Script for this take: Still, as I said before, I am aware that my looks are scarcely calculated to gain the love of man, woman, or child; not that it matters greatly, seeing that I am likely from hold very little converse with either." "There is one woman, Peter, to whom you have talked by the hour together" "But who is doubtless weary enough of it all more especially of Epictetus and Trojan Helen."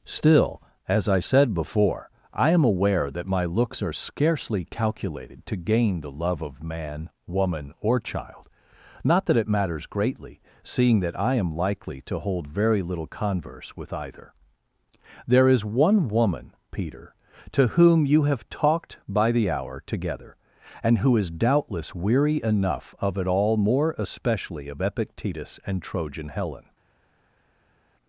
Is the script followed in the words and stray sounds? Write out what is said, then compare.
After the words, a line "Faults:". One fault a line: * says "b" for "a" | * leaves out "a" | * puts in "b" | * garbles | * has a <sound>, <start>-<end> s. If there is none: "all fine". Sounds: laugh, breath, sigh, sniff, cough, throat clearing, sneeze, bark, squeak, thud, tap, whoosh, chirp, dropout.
Still, as I said before, I am aware that my looks are scarcely calculated to gain the love of man, woman, or child; not that it matters greatly, seeing that I am likely to hold very little converse with either." "There is one woman, Peter, to whom you have talked by the hour together" "And who is doubtless weary enough of it all more especially of Epictetus and Trojan Helen."
Faults:
* says "to" for "from"
* says "And" for "But"